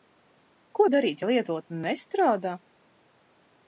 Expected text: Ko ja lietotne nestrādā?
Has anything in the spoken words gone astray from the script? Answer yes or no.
yes